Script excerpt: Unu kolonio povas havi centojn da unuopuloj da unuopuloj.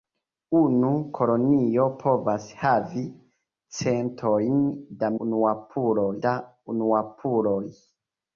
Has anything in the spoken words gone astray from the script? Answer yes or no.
no